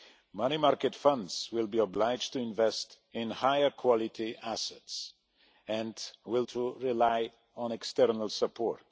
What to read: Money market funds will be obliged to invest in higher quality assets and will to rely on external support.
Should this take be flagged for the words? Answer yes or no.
no